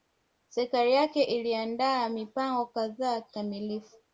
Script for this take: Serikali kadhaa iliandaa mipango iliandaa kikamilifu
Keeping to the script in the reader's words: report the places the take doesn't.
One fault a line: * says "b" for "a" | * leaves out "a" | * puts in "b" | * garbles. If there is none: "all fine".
* says "yake" for "kadhaa"
* says "kadhaa" for "iliandaa"